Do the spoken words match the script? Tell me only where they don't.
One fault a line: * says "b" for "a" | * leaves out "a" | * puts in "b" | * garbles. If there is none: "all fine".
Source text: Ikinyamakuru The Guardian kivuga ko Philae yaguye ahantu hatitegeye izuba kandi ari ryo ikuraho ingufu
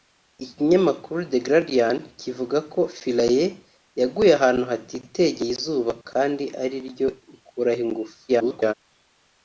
* garbles